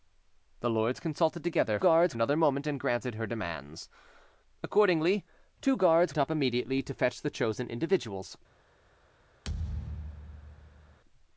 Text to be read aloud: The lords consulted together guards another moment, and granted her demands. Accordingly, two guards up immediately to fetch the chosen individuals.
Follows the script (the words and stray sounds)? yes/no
no